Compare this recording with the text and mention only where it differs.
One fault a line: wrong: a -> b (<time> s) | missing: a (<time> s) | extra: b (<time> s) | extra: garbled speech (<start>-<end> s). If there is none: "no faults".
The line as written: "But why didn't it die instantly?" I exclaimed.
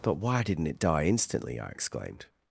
no faults